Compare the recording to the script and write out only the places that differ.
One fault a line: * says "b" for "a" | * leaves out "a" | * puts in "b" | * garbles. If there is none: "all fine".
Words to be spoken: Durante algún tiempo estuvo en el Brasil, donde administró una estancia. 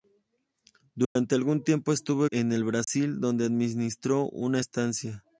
all fine